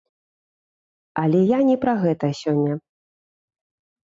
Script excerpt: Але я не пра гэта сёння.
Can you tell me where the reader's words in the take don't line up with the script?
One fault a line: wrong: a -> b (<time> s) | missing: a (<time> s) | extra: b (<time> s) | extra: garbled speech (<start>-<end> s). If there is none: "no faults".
no faults